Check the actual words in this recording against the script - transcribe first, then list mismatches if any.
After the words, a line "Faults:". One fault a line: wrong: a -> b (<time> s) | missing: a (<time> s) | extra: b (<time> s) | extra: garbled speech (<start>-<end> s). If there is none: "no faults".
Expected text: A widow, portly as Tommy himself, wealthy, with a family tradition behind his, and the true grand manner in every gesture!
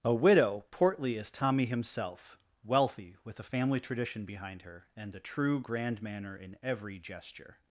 A widow, portly as Tommy himself, wealthy, with a family tradition behind her, and the true grand manner in every gesture!
Faults:
wrong: his -> her (4.6 s)